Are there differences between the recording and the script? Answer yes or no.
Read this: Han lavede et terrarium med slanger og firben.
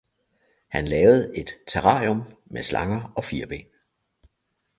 no